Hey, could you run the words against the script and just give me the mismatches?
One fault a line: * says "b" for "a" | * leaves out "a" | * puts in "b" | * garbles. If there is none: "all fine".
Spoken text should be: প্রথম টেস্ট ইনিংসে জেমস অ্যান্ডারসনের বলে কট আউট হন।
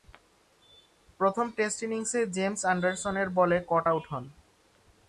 all fine